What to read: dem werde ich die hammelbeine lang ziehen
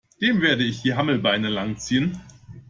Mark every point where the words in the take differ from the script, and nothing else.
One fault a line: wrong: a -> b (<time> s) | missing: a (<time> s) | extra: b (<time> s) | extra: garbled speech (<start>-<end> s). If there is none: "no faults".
no faults